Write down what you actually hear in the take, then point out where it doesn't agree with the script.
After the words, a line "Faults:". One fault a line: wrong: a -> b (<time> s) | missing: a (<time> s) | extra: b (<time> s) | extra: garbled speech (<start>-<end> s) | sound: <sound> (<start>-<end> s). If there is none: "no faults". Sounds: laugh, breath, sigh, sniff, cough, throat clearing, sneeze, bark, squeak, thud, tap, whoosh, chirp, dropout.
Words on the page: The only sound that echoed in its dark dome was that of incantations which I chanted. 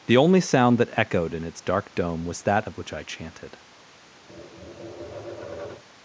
The only sound that echoed in its dark dome was that of which I chanted.
Faults:
missing: incantations (2.8 s)
sound: tap (4.3-5.8 s)